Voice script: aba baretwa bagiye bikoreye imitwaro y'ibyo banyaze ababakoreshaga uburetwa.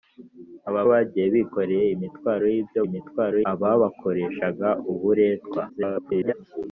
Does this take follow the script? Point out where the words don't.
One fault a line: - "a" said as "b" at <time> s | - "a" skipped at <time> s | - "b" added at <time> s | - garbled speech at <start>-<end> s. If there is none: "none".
- "baretwa" skipped at 0.8 s
- "banyaze" said as "imitwaro" at 2.9 s
- garbled speech at 5.7-6.3 s